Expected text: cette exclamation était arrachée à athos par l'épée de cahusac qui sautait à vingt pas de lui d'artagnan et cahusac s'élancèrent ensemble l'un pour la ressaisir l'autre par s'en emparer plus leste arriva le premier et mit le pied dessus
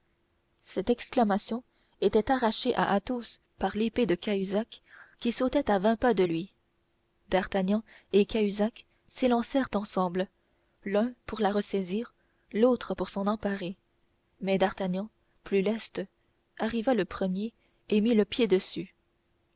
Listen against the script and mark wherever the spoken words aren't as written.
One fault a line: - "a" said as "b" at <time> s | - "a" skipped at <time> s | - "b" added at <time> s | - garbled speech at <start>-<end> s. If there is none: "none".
- "par" said as "pour" at 12.9 s
- "mais d'artagnan" added at 14.4 s